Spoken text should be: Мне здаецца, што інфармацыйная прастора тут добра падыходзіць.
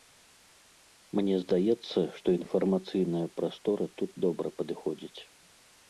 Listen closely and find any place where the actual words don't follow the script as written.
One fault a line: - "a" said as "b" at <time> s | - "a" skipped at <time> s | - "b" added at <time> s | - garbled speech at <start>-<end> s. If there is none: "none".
none